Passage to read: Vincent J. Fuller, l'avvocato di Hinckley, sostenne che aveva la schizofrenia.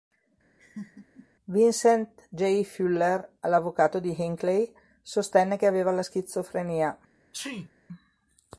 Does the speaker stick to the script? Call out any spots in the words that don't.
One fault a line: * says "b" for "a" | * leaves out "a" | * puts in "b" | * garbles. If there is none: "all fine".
all fine